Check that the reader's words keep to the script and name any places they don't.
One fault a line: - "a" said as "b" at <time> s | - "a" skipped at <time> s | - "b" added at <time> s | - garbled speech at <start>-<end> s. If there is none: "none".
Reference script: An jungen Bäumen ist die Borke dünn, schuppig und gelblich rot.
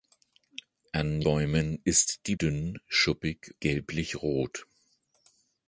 - "jungen" skipped at 1.2 s
- "Borke" skipped at 2.3 s
- "und" skipped at 3.5 s